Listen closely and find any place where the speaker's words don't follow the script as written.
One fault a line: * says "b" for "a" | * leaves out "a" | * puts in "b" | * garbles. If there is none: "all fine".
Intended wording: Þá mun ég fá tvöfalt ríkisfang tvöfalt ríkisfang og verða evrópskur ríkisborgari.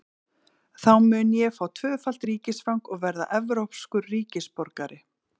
* leaves out "tvöfalt ríkisfang"